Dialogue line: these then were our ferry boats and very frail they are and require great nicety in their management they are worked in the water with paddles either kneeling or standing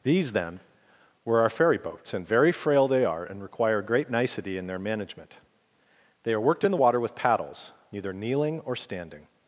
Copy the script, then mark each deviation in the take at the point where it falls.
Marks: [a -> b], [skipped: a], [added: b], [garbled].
these then were our ferry boats and very frail they are and require great nicety in their management they are worked in the water with paddles [either -> neither] kneeling or standing